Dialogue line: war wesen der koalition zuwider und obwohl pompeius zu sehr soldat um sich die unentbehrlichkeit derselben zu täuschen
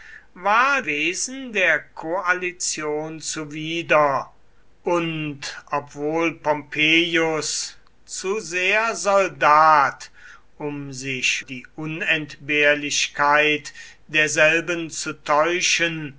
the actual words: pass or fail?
pass